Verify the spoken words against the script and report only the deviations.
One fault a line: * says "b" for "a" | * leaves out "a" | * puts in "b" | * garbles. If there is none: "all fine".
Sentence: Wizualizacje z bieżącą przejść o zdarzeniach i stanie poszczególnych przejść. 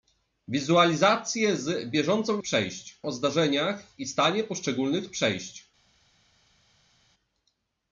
all fine